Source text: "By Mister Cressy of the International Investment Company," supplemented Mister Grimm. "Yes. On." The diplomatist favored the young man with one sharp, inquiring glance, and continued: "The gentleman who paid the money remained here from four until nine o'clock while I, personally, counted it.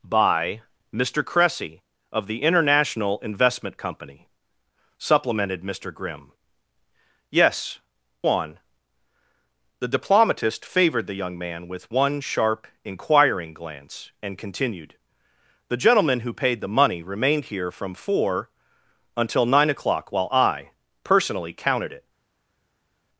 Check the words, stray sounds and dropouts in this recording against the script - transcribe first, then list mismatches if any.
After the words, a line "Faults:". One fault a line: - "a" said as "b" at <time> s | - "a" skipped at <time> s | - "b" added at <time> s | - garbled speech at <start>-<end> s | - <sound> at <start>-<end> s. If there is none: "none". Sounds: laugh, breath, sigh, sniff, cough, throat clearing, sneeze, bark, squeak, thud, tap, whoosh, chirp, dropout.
"By Mister Cressy of the International Investment Company," supplemented Mister Grimm. "Yes. On." The diplomatist favored the young man with one sharp, inquiring glance, and continued: "The gentleman who paid the money remained here from four until nine o'clock while I, personally, counted it.
Faults:
none